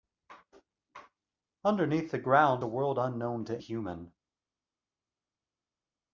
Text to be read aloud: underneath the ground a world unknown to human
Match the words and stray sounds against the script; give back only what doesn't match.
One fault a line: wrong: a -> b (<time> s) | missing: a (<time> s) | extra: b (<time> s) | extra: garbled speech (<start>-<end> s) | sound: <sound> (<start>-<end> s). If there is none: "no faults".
no faults